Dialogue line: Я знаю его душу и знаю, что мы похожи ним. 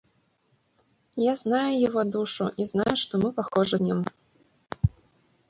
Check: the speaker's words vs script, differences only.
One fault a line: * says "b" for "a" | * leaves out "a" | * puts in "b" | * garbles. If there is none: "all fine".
all fine